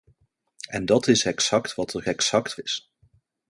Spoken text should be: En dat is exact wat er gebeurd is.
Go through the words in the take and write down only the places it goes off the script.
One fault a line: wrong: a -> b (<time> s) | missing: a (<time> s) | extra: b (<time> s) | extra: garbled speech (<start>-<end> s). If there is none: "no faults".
wrong: gebeurd -> exact (2.1 s)